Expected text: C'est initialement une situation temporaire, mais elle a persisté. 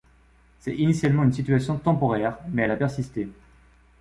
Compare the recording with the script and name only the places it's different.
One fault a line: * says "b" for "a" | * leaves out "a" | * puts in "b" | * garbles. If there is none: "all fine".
all fine